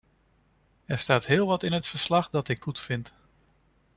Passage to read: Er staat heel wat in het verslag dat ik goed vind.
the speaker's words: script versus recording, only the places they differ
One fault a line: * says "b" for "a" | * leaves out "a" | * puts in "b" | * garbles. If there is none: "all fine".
all fine